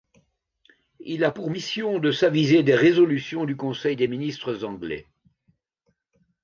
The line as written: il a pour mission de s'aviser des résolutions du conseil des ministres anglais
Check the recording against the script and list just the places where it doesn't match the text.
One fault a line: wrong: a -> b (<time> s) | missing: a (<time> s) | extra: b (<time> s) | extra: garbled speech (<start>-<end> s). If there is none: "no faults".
no faults